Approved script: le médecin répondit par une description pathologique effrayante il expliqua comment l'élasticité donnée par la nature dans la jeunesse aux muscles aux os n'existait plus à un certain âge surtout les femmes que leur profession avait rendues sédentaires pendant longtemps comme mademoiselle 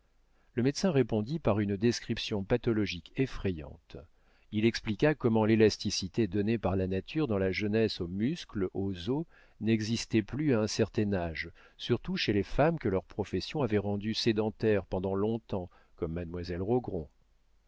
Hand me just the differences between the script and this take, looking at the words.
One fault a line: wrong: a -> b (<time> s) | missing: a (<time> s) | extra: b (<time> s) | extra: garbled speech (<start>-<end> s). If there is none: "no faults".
extra: chez (12.2 s)